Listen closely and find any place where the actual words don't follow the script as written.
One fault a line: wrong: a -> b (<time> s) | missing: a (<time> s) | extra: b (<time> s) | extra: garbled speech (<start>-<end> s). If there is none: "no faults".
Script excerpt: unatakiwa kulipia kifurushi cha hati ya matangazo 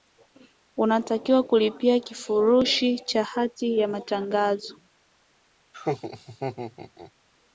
no faults